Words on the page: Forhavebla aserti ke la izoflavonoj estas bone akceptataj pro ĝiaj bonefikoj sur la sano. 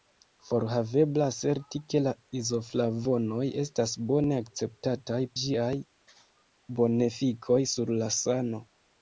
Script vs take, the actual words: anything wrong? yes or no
yes